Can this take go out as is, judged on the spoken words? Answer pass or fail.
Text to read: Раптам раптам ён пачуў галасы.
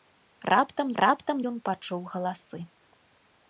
pass